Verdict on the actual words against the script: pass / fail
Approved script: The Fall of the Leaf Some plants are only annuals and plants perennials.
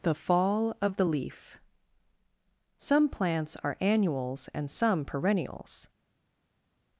fail